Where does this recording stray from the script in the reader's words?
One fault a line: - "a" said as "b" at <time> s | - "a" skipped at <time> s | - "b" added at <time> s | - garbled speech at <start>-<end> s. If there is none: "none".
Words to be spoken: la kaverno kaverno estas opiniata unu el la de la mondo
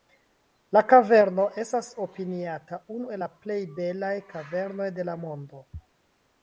- "kaverno" skipped at 1.4 s
- "plej belaj kavernoj" added at 3.5 s